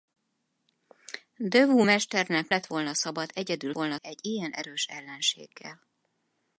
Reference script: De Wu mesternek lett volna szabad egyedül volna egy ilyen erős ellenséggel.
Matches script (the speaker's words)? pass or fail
pass